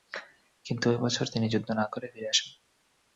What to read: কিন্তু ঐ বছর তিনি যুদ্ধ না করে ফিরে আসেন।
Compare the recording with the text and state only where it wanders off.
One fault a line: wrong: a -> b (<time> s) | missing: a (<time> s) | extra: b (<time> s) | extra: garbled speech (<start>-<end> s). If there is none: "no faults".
no faults